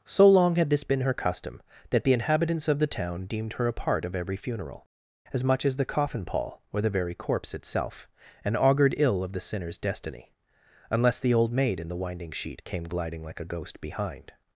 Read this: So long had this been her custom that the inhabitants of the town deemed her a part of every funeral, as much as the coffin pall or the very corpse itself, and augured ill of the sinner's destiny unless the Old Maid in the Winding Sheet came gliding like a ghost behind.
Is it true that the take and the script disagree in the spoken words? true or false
false